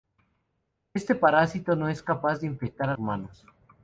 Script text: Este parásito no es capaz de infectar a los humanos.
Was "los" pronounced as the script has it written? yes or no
no